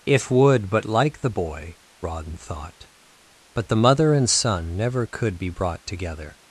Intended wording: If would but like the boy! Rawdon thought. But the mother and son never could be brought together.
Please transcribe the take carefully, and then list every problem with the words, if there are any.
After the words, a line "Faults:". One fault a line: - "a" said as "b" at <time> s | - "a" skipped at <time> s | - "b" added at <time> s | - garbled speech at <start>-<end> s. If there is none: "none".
If would but like the boy! Rawdon thought. But the mother and son never could be brought together.
Faults:
none